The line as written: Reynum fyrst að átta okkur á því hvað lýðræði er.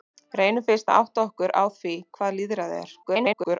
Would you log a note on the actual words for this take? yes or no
yes